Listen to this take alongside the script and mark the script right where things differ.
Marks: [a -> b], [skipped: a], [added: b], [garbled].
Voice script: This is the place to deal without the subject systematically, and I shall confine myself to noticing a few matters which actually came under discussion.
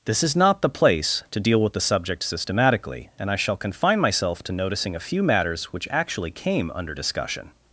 This is [added: not] the place to deal [without -> with] the subject systematically, and I shall confine myself to noticing a few matters which actually came under discussion.